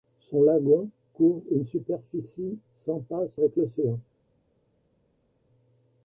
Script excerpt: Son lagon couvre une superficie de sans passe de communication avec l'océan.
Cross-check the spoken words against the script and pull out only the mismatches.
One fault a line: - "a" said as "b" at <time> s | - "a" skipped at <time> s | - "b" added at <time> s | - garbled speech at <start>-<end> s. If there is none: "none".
- "de" skipped at 2.6 s
- "de communication" skipped at 3.4 s